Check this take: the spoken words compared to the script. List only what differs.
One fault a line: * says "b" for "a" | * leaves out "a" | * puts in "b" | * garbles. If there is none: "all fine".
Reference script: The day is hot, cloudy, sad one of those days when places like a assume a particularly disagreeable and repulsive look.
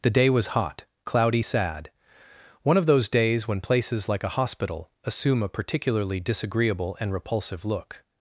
* says "was" for "is"
* puts in "hospital"